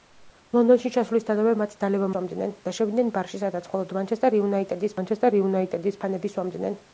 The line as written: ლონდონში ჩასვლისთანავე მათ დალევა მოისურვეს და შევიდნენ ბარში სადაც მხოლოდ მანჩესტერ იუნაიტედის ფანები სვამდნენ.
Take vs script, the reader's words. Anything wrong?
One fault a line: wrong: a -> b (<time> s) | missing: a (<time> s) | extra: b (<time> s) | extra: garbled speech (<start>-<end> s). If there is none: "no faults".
wrong: მოისურვეს -> სვამდნენ (2.1 s)
extra: მანჩესტერ იუნაიტედის (5.0 s)